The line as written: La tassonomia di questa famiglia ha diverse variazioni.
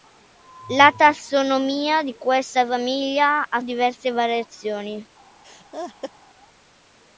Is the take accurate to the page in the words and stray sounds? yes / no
no